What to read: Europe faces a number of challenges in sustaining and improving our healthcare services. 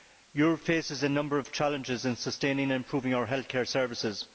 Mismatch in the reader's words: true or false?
false